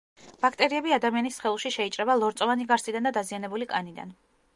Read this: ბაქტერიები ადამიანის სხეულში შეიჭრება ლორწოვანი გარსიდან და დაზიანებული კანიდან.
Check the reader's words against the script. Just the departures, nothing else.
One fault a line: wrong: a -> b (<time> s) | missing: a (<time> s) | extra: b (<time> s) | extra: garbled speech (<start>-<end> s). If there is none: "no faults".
no faults